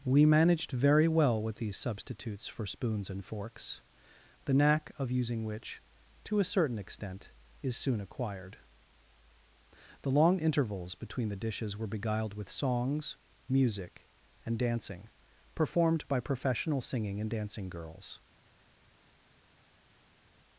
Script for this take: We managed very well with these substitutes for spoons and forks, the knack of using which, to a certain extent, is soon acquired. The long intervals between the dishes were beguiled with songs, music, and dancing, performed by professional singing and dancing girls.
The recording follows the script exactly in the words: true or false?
true